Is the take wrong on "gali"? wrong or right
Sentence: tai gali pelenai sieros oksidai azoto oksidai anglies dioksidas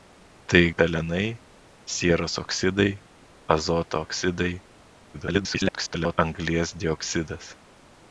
wrong